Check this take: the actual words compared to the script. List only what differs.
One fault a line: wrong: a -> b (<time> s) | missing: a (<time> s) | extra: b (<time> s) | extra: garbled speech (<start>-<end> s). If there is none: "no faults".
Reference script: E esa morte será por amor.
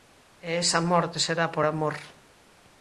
no faults